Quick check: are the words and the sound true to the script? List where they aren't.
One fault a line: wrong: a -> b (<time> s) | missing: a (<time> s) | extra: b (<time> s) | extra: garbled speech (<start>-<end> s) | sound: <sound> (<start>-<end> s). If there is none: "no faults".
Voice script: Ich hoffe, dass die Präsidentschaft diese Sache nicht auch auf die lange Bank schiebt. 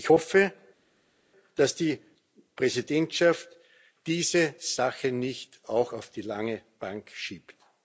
no faults